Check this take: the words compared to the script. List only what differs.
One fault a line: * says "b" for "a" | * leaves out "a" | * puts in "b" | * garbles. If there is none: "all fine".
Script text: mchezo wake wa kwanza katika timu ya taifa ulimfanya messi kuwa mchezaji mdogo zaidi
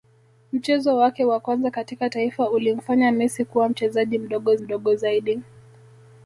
* leaves out "timu ya"
* puts in "mdogo"